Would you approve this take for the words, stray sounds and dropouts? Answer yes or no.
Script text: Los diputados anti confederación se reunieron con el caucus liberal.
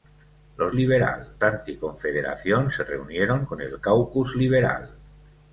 no